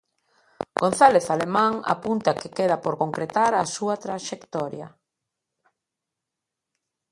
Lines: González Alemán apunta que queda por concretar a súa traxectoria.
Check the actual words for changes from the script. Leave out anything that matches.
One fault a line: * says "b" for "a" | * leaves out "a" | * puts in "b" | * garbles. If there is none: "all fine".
all fine